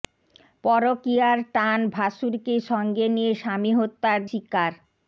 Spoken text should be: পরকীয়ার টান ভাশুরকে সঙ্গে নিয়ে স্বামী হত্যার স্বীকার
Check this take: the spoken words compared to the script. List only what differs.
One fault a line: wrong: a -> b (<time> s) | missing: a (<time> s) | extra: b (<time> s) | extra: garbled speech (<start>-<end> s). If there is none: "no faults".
no faults